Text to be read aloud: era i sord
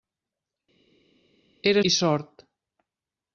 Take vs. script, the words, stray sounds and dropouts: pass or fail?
pass